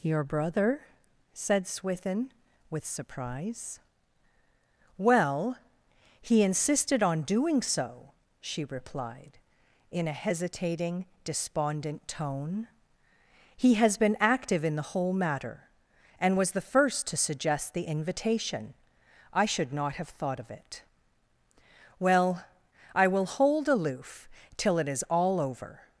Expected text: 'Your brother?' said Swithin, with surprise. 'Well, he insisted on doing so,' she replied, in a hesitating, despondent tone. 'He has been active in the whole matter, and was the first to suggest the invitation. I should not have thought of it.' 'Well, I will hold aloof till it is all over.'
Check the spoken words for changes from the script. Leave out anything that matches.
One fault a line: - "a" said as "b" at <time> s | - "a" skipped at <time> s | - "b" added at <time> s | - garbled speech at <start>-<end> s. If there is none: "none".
none